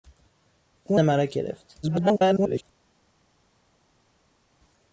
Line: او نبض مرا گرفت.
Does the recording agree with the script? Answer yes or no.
no